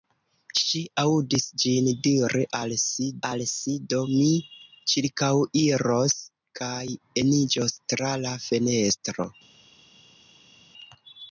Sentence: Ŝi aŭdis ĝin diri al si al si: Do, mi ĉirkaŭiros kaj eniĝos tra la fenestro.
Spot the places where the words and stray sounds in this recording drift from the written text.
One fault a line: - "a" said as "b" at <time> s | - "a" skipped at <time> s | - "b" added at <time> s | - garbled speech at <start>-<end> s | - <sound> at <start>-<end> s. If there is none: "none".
none